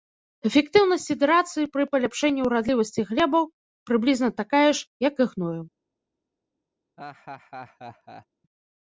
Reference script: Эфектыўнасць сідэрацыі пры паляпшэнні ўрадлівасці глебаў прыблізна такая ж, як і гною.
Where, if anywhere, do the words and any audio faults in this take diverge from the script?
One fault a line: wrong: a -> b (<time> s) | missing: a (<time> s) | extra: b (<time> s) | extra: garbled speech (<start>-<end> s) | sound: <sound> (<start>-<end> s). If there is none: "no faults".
sound: laugh (7.0-8.3 s)